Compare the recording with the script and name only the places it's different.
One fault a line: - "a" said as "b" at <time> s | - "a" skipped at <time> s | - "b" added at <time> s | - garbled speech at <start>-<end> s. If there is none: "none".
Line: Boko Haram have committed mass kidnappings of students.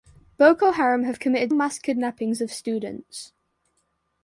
none